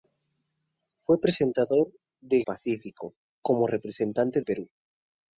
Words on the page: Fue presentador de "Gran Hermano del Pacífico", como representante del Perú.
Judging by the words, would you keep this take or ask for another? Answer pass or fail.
fail